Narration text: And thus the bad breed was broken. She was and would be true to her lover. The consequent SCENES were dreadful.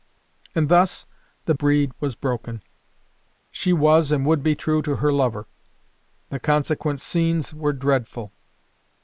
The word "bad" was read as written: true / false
false